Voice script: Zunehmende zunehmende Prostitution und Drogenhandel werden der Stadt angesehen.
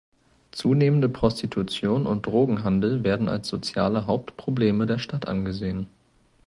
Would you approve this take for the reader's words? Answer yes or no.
no